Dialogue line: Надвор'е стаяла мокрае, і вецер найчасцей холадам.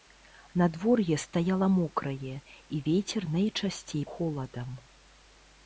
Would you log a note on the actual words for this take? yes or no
no